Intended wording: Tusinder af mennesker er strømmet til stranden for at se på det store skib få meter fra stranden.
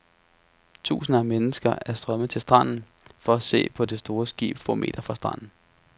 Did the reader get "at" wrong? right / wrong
right